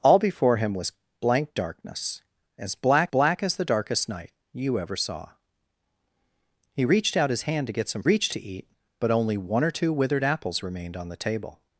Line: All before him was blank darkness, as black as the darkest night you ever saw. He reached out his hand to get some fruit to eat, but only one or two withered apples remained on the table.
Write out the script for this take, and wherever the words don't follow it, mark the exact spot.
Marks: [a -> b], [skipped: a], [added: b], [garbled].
All before him was blank darkness, as black [added: black] as the darkest night you ever saw. He reached out his hand to get some [fruit -> reached] to eat, but only one or two withered apples remained on the table.